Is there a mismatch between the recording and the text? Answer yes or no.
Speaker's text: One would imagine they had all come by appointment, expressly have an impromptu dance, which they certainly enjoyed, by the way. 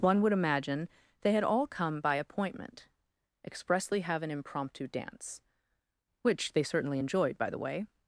no